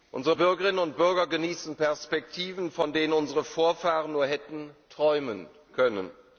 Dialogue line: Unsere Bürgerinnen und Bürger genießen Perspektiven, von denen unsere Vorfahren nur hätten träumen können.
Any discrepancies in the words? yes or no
no